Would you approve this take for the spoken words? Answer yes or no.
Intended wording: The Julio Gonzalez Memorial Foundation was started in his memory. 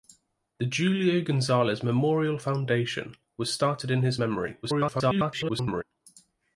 no